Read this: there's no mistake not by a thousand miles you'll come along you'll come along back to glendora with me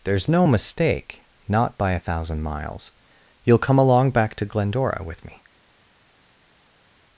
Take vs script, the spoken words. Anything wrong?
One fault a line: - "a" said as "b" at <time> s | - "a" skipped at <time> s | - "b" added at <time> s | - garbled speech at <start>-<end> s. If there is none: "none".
- "you'll come along" skipped at 4.1 s